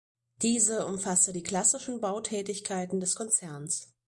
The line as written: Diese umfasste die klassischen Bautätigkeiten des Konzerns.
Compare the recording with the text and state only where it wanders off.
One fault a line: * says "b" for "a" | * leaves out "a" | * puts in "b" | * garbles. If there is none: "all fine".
all fine